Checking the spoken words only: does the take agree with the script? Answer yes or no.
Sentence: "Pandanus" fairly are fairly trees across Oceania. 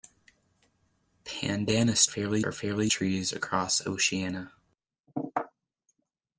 yes